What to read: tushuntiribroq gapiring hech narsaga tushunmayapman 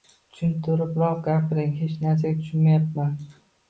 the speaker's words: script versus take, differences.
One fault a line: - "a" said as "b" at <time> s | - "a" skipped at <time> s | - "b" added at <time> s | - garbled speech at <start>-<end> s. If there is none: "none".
none